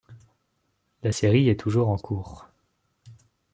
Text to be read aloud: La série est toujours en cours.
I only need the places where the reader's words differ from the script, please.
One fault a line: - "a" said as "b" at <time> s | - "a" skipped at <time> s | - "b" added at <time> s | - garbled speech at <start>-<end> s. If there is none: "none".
none